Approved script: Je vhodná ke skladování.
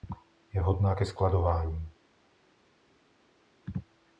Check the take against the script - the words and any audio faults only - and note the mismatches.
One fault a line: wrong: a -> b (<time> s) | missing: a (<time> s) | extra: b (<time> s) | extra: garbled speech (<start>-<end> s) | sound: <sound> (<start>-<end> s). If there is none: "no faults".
no faults